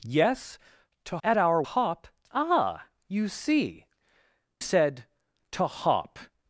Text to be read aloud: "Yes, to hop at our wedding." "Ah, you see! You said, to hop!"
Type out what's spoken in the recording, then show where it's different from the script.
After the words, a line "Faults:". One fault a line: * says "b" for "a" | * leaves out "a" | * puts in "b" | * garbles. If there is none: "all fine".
"Yes, to at our hop." "Ah, you see! Said, to hop!"
Faults:
* leaves out "hop"
* says "hop" for "wedding"
* leaves out "You"